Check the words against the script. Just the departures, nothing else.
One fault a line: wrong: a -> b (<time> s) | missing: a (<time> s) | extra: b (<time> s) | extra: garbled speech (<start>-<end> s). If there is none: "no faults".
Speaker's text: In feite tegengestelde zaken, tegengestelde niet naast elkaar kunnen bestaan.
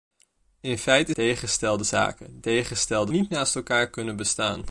no faults